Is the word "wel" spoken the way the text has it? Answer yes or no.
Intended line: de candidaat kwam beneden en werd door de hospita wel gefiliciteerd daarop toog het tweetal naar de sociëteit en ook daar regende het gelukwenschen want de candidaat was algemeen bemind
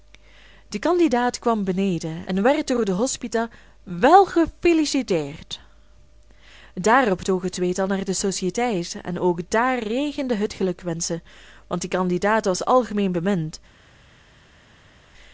yes